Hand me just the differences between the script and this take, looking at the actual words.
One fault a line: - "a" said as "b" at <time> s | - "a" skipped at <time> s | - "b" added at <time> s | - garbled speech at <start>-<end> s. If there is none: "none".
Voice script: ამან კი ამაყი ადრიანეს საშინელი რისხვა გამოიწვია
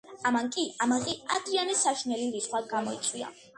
none